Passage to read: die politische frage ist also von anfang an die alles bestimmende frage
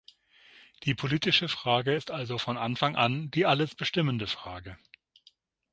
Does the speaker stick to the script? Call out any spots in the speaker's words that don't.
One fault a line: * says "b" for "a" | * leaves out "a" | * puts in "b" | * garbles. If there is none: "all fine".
all fine